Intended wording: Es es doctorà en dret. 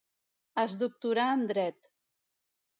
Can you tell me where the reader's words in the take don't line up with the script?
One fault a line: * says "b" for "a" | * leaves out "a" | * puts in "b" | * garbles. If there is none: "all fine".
* leaves out "es"